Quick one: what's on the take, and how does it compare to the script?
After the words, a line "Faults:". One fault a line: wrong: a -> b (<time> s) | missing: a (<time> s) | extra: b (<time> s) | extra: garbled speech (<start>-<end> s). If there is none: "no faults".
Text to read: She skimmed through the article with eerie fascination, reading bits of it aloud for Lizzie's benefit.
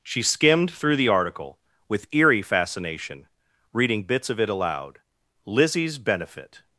She skimmed through the article with eerie fascination, reading bits of it aloud Lizzie's benefit.
Faults:
missing: for (5.0 s)